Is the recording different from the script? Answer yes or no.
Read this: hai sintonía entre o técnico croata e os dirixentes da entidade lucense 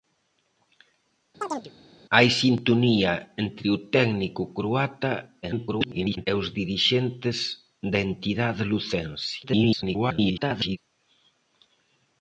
yes